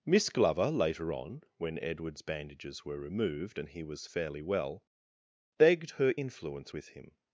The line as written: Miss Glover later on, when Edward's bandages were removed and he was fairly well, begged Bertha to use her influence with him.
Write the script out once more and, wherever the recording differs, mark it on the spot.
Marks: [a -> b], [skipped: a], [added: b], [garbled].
Miss Glover later on, when Edward's bandages were removed and he was fairly well, begged [skipped: Bertha to use] her influence with him.